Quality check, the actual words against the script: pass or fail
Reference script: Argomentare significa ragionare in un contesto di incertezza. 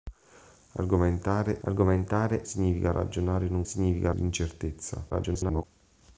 fail